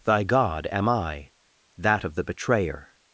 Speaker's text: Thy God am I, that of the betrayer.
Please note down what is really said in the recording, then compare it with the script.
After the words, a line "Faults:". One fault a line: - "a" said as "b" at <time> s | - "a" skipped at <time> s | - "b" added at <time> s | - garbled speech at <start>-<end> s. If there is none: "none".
Thy God am I, that of the betrayer.
Faults:
none